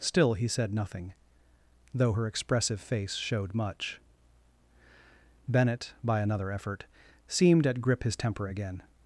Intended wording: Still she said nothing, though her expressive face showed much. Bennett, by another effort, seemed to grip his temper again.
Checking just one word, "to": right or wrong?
wrong